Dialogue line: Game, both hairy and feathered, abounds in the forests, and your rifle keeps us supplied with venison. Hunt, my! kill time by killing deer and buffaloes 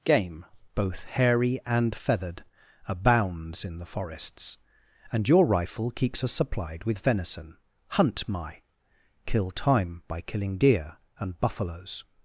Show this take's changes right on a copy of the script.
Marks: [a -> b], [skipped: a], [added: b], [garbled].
Game, both hairy and feathered, abounds in the forests, and your rifle keeps us supplied with venison. Hunt, my! kill time by killing deer and buffaloes